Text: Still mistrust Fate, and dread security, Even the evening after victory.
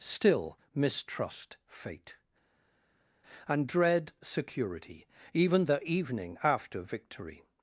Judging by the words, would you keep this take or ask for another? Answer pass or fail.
pass